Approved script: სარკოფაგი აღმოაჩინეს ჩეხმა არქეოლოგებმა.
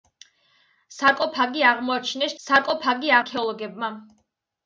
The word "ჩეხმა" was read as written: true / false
false